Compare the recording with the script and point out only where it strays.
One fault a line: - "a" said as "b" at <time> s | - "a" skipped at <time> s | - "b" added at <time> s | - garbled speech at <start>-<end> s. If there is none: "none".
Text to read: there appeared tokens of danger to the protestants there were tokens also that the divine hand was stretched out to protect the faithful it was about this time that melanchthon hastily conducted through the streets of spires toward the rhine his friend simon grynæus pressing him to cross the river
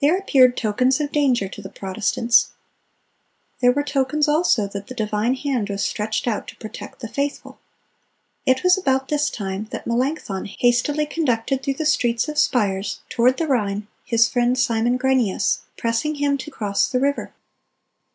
none